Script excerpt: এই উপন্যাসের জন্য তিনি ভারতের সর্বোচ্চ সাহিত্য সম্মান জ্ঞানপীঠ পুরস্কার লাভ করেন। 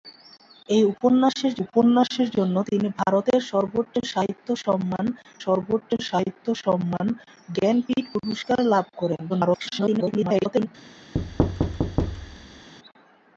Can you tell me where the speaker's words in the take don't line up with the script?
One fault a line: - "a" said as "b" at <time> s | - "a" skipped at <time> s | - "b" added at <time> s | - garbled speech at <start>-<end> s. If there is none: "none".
- "উপন্যাসের" added at 1.6 s
- "সর্বোচ্চ সাহিত্য সম্মান" added at 5.4 s
- garbled speech at 9.3-10.7 s